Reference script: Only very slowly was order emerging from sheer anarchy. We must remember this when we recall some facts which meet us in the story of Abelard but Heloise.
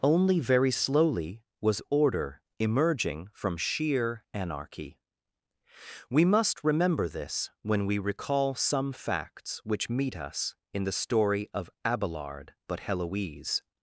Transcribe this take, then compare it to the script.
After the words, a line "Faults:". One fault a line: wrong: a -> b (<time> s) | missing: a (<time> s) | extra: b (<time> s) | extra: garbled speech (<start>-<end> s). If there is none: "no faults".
Only very slowly was order emerging from sheer anarchy. We must remember this when we recall some facts which meet us in the story of Abelard but Heloise.
Faults:
no faults